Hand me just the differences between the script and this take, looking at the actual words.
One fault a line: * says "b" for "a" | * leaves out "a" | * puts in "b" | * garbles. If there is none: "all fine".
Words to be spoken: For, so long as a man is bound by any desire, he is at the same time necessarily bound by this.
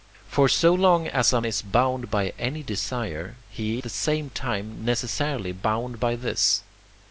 * leaves out "man"
* leaves out "is at"